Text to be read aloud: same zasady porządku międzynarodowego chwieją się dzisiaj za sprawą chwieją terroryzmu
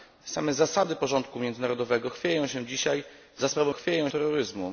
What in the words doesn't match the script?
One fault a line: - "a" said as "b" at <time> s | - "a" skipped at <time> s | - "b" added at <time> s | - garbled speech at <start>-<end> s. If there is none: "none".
none